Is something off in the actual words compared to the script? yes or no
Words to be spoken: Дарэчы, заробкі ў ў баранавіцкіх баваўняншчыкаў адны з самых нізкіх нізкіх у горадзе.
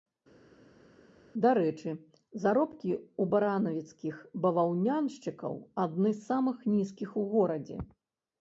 yes